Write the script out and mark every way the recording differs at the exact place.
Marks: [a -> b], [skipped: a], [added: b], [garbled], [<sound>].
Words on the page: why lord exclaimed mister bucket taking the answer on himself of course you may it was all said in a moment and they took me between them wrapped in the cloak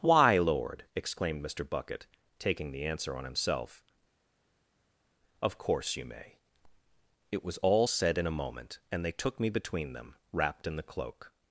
why lord exclaimed mister bucket taking the answer on himself of course you may it was all said in a moment and they took me between them wrapped in the cloak